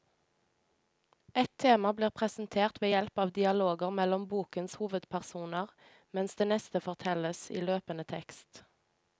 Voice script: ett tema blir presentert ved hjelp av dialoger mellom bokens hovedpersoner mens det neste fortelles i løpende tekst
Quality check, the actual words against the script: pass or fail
pass